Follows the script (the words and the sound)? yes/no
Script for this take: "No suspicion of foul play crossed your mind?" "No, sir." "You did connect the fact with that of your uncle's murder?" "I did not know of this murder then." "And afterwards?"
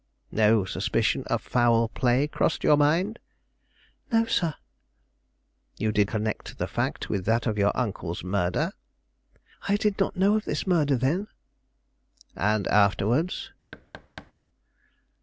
no